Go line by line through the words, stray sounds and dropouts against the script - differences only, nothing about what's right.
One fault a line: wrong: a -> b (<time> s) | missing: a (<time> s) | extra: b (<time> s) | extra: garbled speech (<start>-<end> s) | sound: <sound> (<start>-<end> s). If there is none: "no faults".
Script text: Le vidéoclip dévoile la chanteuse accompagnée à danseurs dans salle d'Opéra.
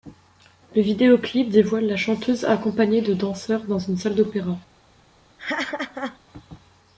wrong: à -> de (3.0 s)
extra: une (3.8 s)
sound: laugh (5.4-6.2 s)